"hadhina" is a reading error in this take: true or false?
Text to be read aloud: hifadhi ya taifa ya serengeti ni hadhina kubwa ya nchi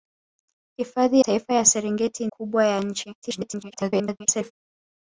true